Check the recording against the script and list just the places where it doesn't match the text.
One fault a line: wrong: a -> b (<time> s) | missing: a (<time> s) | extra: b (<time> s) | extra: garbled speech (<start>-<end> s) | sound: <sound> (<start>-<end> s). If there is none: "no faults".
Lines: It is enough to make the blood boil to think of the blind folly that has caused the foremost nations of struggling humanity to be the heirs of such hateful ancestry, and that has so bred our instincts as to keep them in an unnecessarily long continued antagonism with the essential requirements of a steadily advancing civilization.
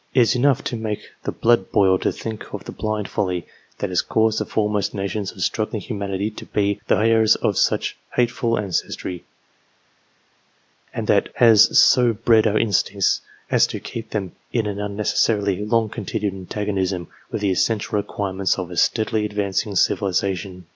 no faults